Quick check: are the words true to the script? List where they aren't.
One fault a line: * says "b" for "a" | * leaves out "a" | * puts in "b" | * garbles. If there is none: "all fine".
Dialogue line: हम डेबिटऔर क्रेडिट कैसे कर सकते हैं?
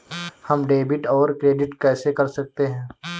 all fine